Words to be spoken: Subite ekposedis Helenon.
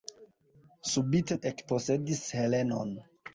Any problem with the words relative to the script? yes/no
no